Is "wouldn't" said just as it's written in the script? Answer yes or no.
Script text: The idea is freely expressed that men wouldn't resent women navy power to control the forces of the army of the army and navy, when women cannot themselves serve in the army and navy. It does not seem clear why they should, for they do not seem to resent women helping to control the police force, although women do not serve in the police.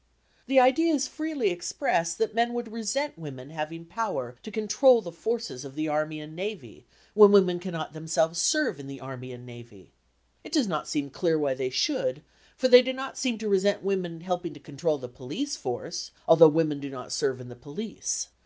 no